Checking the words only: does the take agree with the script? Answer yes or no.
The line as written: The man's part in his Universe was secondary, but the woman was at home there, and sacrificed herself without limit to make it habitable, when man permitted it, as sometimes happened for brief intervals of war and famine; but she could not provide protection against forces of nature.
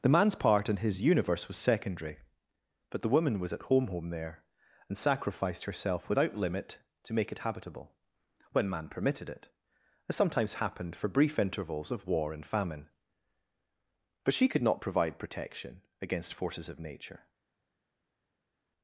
no